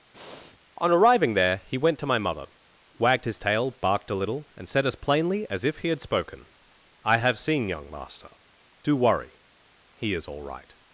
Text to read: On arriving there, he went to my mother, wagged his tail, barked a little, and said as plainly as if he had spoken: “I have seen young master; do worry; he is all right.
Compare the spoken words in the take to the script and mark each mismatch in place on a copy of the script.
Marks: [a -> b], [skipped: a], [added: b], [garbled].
On arriving there, he went to my mother, wagged his tail, barked a little, and said as plainly as if he had spoken: “I have seen young master; do worry; he is all right.